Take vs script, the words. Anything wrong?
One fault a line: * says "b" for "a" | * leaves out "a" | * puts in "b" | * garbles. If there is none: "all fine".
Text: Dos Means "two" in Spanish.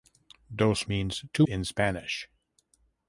all fine